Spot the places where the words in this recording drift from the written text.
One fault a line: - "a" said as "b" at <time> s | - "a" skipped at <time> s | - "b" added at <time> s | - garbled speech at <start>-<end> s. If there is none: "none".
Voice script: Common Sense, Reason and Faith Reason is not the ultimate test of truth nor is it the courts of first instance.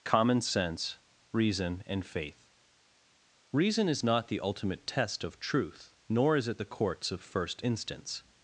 none